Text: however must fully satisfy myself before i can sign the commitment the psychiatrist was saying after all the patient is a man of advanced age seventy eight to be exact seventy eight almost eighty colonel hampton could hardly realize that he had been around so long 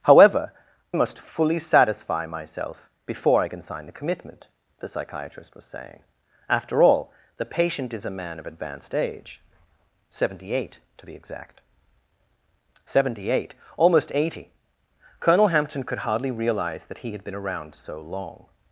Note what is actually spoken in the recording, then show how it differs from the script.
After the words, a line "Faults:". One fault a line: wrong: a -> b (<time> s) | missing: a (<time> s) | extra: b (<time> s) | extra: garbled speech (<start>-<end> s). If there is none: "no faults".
however must fully satisfy myself before i can sign the commitment the psychiatrist was saying after all the patient is a man of advanced age seventy eight to be exact seventy eight almost eighty colonel hampton could hardly realize that he had been around so long
Faults:
no faults